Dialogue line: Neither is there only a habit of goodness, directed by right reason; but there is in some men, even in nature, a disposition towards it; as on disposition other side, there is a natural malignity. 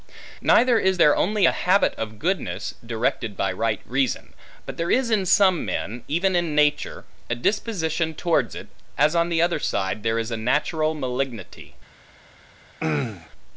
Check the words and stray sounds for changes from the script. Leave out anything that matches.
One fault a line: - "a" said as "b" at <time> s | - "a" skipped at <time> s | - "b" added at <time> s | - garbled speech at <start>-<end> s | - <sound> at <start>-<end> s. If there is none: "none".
- "disposition" said as "the" at 9.3 s
- throat clearing at 12.8-13.3 s